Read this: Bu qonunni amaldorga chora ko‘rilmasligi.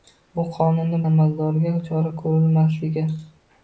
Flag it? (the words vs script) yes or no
no